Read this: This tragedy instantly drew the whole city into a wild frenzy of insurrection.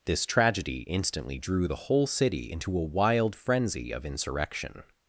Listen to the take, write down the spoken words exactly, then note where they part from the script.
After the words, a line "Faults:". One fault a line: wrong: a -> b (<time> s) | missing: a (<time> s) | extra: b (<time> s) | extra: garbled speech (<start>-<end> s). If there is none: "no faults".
This tragedy instantly drew the whole city into a wild frenzy of insurrection.
Faults:
no faults